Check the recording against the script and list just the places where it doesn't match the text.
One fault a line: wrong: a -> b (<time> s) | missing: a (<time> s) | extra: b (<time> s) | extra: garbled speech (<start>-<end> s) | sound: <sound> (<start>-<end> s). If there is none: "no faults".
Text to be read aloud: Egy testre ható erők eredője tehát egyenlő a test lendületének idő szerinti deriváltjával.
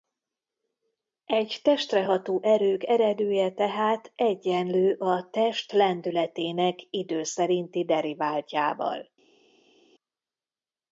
no faults